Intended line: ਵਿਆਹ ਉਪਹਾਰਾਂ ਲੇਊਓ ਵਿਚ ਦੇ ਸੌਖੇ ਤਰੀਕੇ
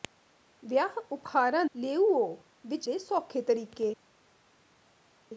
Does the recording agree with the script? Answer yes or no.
yes